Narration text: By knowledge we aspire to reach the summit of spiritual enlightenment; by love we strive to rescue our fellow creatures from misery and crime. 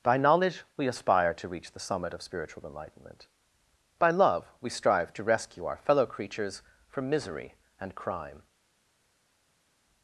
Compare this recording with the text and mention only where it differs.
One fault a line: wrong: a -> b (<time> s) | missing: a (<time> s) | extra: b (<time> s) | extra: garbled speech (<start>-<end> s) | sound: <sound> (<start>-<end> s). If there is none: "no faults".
no faults